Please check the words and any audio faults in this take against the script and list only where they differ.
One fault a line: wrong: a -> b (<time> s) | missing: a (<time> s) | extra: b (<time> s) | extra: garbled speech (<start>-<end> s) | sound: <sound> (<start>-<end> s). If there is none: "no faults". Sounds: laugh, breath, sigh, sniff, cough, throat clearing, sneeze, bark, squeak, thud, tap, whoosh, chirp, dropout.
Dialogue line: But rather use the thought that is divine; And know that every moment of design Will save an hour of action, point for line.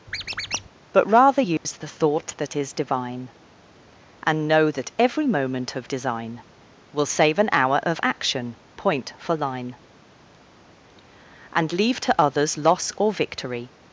sound: squeak (0.1-0.7 s)
sound: dropout (1.6-1.6 s)
extra: And leave to others loss or victory (11.5 s)